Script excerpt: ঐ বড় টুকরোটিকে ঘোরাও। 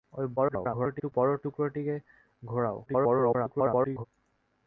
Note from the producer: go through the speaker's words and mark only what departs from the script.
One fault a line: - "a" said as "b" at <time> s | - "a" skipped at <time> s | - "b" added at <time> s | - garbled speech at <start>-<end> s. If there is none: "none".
- garbled speech at 0.4-1.1 s
- garbled speech at 2.9-4.1 s